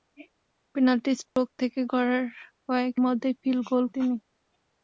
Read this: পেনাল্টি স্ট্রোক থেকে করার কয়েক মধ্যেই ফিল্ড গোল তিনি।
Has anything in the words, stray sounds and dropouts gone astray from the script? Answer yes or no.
yes